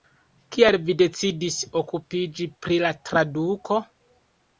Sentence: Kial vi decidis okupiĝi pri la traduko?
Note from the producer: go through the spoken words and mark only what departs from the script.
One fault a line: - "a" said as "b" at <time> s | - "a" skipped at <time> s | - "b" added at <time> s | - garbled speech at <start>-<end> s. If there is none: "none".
none